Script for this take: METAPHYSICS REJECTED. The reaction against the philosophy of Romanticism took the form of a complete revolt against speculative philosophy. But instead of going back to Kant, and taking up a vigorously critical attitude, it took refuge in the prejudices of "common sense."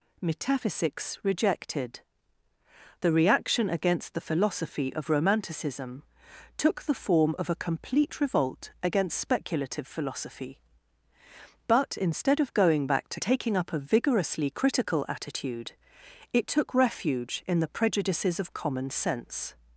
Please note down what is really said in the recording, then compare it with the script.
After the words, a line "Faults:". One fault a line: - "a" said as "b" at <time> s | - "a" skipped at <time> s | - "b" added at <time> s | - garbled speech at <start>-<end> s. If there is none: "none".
METAPHYSICS REJECTED. The reaction against the philosophy of Romanticism took the form of a complete revolt against speculative philosophy. But instead of going back to Taking up a vigorously critical attitude, it took refuge in the prejudices of "common sense."
Faults:
- "Kant and" skipped at 13.2 s